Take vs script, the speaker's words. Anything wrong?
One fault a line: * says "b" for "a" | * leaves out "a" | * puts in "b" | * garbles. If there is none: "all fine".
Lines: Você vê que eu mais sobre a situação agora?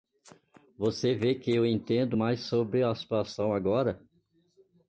* puts in "entendo"